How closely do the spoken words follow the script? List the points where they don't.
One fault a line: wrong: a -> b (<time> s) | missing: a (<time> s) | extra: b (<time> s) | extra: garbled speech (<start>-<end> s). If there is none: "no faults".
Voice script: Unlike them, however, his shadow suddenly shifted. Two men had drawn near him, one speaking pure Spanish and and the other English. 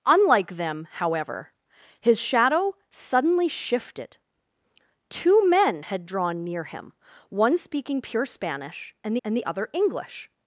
no faults